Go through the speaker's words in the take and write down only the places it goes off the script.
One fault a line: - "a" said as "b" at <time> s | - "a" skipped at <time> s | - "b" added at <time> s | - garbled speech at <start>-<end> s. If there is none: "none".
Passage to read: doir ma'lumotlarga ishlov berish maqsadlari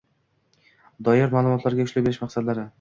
none